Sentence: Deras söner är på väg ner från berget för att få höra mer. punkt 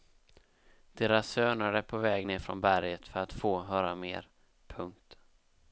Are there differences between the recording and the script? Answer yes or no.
no